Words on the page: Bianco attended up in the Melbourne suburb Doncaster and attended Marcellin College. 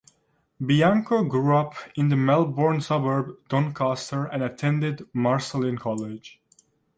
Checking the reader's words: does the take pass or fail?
fail